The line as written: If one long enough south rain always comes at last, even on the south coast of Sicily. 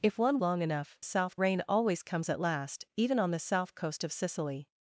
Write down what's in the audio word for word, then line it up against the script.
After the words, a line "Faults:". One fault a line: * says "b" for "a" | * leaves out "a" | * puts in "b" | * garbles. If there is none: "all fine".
If one long enough south rain always comes at last, even on the south coast of Sicily.
Faults:
all fine